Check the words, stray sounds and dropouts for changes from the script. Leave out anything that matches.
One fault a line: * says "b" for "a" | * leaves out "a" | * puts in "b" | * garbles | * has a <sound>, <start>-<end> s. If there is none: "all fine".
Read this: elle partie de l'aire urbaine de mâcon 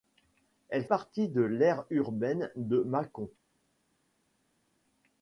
all fine